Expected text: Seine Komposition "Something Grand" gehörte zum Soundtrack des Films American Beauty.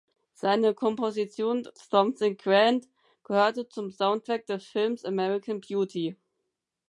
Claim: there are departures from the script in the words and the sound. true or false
false